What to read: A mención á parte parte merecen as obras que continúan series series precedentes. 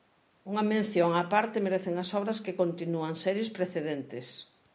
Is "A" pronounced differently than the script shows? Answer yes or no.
yes